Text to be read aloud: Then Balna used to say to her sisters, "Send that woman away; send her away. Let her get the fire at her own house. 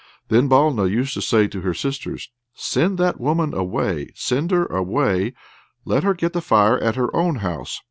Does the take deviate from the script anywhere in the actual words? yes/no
no